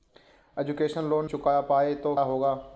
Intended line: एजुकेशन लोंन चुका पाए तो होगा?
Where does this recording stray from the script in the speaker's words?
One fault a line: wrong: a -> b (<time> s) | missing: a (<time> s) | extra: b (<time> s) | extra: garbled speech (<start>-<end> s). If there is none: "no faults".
no faults